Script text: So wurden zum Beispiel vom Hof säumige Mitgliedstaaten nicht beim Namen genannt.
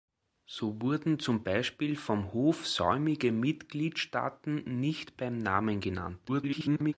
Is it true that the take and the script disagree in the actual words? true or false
true